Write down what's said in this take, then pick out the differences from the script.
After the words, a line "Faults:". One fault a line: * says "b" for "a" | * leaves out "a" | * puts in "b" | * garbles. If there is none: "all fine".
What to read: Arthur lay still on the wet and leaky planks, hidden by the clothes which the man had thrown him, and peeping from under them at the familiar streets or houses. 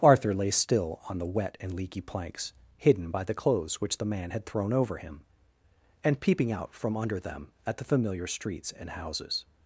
Arthur lay still on the wet and leaky planks, hidden by the clothes which the man had thrown over him, and peeping out from under them at the familiar streets and houses.
Faults:
* puts in "over"
* puts in "out"
* says "and" for "or"